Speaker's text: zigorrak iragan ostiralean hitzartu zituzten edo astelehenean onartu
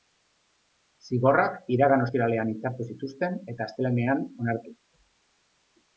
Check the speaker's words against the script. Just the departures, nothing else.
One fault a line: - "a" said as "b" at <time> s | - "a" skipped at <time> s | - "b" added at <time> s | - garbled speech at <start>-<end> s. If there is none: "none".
- "edo" said as "eta" at 3.5 s